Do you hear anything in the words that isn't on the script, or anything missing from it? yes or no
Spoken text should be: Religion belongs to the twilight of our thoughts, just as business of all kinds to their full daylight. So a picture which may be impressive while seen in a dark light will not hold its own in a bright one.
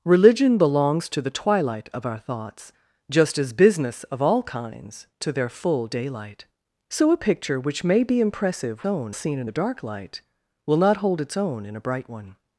yes